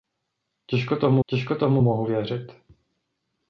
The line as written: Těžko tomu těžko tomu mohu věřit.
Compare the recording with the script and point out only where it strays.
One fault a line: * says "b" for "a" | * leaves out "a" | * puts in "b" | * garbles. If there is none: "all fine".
all fine